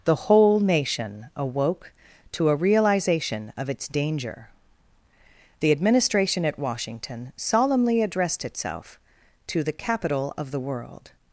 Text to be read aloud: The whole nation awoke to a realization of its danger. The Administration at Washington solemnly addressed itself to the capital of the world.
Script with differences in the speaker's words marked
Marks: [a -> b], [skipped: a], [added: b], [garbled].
The whole nation awoke to a realization of its danger. The Administration at Washington solemnly addressed itself to the capital of the world.